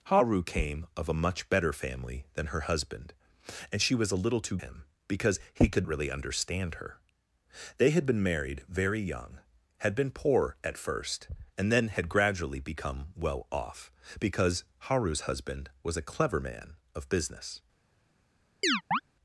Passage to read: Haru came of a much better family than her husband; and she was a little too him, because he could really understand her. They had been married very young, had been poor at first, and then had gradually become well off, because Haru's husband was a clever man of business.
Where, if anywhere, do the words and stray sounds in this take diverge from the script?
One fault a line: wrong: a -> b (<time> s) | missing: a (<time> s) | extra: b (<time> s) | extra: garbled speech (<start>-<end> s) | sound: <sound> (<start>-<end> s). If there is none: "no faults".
sound: chirp (18.6-19.0 s)